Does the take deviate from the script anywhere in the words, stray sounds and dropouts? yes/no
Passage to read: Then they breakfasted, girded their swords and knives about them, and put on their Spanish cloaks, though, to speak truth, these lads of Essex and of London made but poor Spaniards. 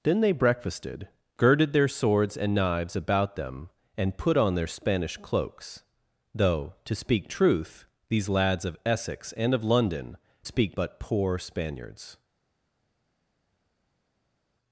yes